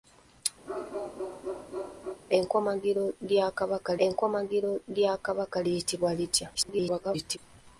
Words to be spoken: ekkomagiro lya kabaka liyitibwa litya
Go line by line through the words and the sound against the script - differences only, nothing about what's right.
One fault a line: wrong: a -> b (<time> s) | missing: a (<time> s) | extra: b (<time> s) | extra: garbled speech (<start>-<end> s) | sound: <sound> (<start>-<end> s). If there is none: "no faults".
sound: bark (0.7-2.2 s)
extra: ekkomagiro lya kabaka (4.1 s)
extra: garbled speech (6.5-7.4 s)